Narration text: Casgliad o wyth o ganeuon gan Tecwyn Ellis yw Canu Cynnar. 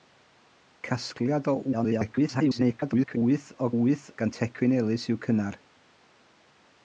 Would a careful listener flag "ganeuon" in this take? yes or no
yes